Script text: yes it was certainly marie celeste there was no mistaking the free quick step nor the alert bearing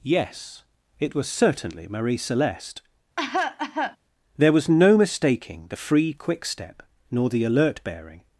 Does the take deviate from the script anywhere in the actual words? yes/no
no